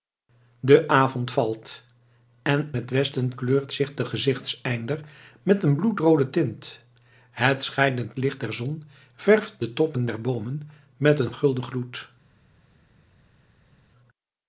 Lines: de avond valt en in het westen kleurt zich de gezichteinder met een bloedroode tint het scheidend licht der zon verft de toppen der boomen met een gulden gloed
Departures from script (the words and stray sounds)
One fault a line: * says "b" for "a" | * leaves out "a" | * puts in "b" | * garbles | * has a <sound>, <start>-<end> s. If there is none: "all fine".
* leaves out "in"